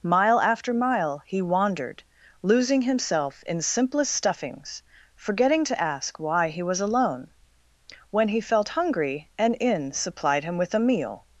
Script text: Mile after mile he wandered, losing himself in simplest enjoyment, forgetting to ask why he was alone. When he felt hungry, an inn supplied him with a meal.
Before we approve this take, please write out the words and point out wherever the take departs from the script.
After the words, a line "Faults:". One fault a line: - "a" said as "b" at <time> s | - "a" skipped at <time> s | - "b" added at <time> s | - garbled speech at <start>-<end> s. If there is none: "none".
Mile after mile he wandered, losing himself in simplest stuffings, forgetting to ask why he was alone. When he felt hungry, an inn supplied him with a meal.
Faults:
- "enjoyment" said as "stuffings" at 4.1 s